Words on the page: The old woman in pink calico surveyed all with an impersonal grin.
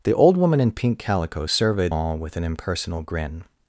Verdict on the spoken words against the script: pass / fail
pass